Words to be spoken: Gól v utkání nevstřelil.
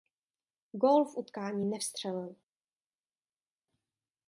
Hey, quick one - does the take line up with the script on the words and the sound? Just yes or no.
yes